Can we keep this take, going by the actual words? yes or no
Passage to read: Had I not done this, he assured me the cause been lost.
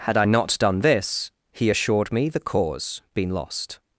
yes